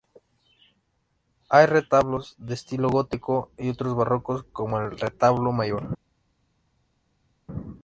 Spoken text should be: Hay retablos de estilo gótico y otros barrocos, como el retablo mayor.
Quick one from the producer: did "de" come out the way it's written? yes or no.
yes